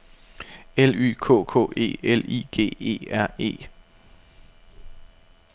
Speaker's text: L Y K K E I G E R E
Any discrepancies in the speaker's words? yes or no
yes